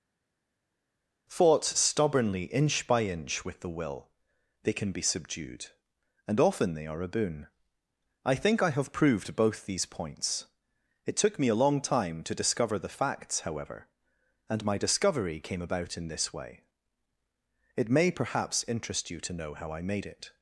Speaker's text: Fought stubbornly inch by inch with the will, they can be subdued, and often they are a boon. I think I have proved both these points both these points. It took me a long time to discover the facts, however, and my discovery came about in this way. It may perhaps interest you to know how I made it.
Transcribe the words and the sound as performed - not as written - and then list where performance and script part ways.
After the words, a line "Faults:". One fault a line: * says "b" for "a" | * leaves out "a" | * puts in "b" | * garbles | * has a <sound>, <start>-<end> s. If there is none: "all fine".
Fought stubbornly inch by inch with the will, they can be subdued, and often they are a boon. I think I have proved both these points. It took me a long time to discover the facts, however, and my discovery came about in this way. It may perhaps interest you to know how I made it.
Faults:
* leaves out "both these points"